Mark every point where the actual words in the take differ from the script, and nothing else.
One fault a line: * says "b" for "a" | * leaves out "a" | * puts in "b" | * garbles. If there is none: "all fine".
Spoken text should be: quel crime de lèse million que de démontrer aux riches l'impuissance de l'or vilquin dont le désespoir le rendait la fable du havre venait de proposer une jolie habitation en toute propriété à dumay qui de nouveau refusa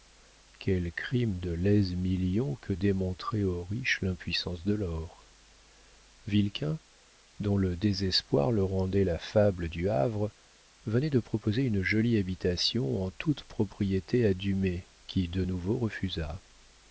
* leaves out "de"